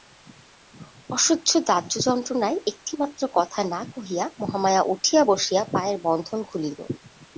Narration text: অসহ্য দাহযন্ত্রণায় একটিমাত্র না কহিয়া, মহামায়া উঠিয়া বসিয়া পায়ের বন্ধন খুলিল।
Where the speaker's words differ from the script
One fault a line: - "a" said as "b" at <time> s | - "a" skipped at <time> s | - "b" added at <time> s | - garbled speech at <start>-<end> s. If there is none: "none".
- "কথা" added at 3.3 s